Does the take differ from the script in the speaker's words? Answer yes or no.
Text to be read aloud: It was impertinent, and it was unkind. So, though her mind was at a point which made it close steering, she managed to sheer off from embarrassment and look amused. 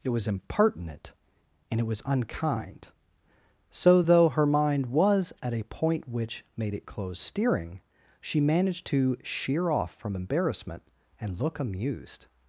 no